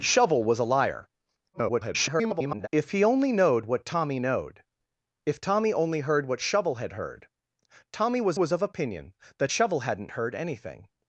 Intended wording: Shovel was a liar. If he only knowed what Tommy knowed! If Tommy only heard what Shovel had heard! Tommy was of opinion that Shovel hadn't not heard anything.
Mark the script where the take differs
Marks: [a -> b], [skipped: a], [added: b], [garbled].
Shovel was a liar. [garbled] If he only knowed what Tommy knowed! If Tommy only heard what Shovel had heard! Tommy was [added: was] of opinion that Shovel hadn't [skipped: not] heard anything.